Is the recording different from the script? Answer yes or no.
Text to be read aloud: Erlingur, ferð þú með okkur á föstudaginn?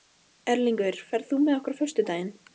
no